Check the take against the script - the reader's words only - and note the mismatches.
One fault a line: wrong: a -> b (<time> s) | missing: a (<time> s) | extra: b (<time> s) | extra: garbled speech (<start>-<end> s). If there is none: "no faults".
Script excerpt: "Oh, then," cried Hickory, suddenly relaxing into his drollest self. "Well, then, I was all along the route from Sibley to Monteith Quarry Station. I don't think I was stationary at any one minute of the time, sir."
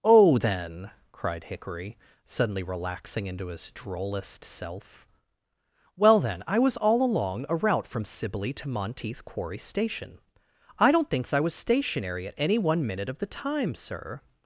wrong: the -> a (7.5 s)
wrong: think -> thinks (11.1 s)